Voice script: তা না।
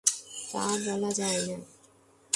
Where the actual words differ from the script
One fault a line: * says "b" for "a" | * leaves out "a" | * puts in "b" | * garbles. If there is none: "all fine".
* puts in "বলা যায়"